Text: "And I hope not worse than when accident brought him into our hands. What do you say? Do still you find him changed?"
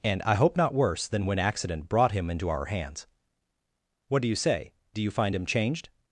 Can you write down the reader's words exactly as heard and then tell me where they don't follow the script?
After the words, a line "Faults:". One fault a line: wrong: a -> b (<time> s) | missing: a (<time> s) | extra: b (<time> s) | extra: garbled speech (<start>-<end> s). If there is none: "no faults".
"And I hope not worse than when accident brought him into our hands. What do you say? Do you find him changed?"
Faults:
missing: still (5.0 s)